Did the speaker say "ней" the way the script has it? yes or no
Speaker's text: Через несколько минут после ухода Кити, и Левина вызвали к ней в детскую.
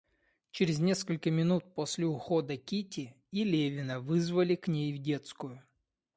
yes